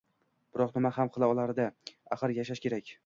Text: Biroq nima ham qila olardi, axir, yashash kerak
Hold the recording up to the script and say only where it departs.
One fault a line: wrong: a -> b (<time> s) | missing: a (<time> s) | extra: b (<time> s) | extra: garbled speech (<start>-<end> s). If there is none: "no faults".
no faults